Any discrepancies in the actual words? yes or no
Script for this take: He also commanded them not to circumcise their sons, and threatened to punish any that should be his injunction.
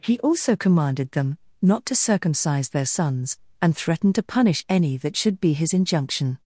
no